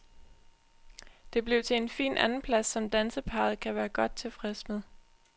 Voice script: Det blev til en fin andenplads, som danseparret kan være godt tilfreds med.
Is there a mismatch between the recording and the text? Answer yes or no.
no